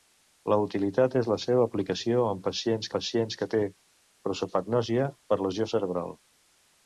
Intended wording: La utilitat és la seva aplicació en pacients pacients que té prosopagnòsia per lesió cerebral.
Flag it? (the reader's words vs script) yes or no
no